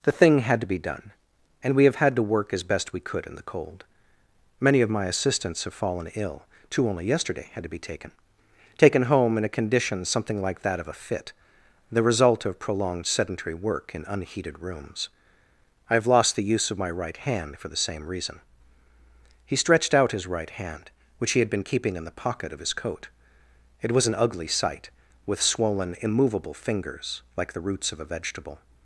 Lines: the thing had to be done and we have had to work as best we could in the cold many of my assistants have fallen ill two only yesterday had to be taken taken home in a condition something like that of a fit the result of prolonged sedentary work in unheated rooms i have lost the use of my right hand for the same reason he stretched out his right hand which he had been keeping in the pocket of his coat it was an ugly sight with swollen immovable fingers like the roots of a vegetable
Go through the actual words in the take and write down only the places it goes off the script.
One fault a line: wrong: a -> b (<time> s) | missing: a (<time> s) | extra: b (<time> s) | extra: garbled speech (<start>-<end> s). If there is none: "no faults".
no faults